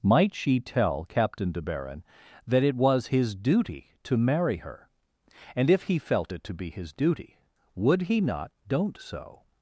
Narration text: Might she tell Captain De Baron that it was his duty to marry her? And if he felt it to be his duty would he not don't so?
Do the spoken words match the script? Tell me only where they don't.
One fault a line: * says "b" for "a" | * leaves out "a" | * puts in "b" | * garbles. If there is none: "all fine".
all fine